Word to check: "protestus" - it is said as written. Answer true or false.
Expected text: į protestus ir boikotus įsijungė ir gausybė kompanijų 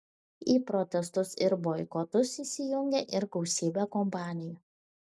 true